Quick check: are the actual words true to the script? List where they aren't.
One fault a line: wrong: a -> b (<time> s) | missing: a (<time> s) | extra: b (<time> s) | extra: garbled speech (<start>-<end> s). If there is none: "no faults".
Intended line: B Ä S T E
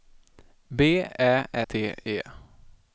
missing: S (1.4 s)